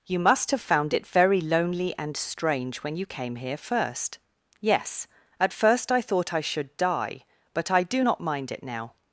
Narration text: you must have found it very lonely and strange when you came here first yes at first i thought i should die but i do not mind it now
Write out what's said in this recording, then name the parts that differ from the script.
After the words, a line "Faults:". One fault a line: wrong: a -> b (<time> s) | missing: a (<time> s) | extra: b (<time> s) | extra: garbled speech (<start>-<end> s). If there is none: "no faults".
you must have found it very lonely and strange when you came here first yes at first i thought i should die but i do not mind it now
Faults:
no faults